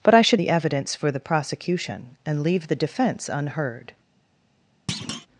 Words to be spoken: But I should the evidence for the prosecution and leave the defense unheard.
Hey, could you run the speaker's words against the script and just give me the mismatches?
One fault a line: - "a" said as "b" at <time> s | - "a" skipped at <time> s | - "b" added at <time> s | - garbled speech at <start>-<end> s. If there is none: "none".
none